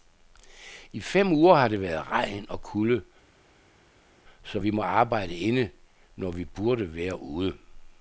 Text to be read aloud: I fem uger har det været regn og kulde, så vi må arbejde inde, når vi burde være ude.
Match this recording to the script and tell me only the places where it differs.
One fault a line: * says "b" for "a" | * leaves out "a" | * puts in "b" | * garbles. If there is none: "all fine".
all fine